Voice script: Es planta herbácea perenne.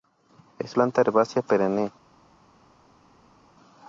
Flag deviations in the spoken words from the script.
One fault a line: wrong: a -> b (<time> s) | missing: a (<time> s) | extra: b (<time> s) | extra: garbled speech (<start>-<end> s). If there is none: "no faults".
no faults